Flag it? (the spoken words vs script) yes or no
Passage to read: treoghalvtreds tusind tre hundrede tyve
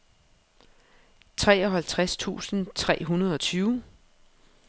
no